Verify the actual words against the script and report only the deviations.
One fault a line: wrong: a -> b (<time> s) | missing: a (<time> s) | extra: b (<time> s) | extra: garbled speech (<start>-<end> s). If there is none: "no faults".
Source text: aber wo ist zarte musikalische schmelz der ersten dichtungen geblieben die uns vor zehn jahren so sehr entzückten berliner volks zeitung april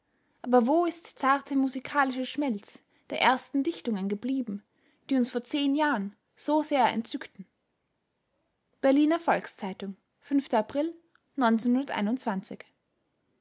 no faults